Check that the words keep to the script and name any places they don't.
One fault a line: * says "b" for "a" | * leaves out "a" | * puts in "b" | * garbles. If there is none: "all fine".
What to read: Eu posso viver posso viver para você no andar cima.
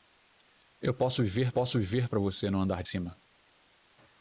all fine